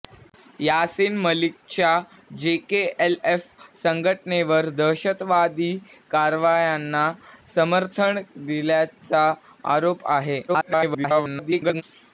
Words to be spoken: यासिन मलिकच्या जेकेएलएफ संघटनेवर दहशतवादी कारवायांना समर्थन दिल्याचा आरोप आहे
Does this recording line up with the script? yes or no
no